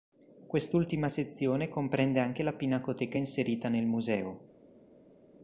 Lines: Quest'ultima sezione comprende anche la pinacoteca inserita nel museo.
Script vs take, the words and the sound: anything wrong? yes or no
no